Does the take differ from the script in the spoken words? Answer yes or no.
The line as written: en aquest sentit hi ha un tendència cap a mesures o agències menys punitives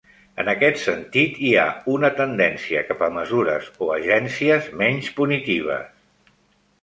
yes